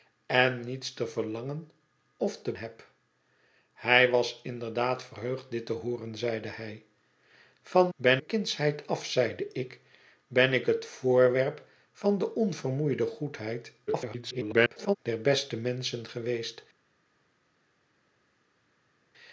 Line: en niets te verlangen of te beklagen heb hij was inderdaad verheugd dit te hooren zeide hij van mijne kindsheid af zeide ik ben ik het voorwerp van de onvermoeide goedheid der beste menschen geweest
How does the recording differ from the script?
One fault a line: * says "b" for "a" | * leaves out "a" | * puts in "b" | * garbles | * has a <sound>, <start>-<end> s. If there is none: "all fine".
* leaves out "beklagen"
* says "ben" for "mijne"
* garbles